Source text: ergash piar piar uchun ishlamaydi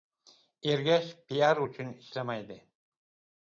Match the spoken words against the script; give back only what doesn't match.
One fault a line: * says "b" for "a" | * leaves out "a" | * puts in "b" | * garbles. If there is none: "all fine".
* leaves out "piar"